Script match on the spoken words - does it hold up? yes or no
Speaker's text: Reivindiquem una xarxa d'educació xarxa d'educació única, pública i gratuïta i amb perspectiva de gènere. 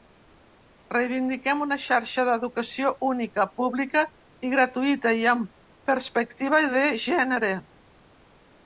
no